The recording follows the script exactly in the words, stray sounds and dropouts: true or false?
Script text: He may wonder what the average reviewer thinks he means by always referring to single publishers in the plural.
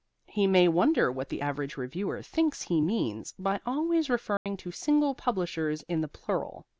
false